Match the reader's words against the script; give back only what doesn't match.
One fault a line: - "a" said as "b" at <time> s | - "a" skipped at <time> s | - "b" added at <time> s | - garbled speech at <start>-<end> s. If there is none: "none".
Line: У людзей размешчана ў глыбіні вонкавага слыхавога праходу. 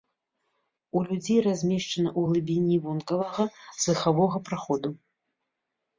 none